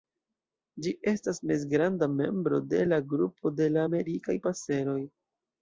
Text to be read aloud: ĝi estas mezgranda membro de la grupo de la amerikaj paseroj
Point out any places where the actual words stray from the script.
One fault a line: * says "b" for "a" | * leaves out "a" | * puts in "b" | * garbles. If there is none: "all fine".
all fine